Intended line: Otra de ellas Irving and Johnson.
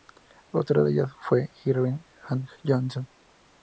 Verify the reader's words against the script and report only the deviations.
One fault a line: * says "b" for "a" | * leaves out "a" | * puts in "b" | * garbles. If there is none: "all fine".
* puts in "fue"